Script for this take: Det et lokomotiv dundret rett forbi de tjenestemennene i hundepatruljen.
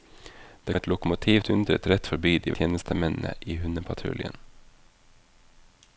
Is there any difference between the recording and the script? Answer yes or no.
no